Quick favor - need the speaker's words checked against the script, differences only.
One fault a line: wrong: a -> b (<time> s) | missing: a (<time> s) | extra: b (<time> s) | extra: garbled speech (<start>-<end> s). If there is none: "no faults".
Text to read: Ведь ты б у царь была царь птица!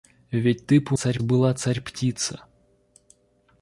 no faults